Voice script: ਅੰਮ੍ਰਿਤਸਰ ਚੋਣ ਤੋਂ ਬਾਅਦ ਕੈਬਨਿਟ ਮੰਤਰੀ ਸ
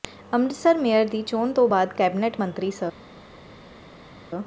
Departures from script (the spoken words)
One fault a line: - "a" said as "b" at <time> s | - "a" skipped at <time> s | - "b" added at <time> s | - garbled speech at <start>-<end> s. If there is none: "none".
- "ਮੇਅਰ ਦੀ" added at 0.8 s